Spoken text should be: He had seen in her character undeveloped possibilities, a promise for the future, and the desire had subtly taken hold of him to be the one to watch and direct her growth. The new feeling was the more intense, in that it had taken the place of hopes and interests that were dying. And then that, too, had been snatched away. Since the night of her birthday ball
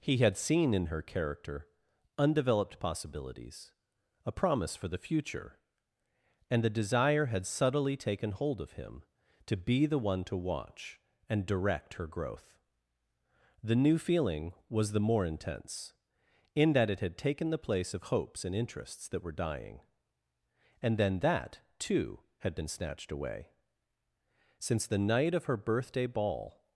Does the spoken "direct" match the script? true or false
true